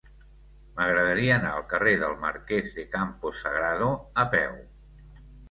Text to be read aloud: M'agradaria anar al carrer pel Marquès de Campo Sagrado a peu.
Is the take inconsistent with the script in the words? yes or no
yes